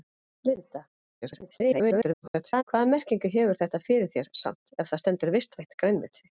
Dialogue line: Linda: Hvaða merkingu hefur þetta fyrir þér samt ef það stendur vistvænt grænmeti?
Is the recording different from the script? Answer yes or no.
yes